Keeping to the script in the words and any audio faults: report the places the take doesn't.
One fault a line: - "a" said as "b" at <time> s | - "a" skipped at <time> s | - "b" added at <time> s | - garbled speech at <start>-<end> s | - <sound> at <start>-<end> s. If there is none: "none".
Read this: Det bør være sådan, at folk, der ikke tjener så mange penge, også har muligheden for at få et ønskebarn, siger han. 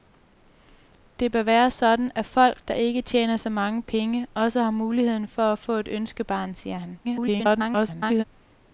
- garbled speech at 7.0-8.2 s